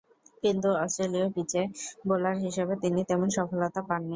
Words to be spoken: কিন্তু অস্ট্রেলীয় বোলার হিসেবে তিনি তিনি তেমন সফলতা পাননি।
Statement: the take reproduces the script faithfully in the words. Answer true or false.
false